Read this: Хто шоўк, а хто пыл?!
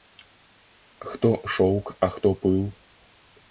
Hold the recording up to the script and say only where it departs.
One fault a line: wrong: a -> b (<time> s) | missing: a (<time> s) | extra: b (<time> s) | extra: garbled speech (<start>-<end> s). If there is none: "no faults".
no faults